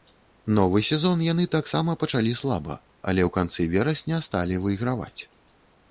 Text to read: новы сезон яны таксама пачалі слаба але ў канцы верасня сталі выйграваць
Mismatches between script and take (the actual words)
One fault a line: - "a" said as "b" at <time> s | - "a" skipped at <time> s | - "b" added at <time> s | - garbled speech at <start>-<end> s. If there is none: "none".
none